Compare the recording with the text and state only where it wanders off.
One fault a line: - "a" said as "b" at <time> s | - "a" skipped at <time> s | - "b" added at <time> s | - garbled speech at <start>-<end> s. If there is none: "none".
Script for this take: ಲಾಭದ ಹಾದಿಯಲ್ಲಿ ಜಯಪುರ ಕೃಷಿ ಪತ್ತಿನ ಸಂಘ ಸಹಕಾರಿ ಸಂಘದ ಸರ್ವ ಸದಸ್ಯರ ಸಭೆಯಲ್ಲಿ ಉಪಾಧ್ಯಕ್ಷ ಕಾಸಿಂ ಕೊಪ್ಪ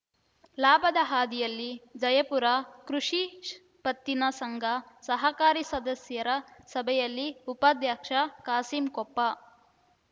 - "ಸಂಘದ ಸರ್ವ" skipped at 5.6 s